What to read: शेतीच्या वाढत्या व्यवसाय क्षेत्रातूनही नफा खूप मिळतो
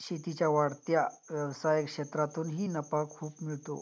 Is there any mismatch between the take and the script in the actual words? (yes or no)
no